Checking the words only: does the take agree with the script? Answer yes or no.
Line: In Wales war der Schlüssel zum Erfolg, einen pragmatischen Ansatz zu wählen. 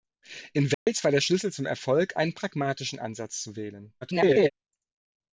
no